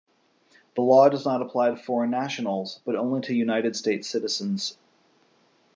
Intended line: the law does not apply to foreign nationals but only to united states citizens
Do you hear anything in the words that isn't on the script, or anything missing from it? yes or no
no